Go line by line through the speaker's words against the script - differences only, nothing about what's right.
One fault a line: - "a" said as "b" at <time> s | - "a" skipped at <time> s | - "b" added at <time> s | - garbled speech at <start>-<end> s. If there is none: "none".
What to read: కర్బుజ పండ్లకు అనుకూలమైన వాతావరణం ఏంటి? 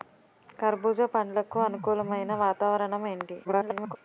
- garbled speech at 3.4-4.0 s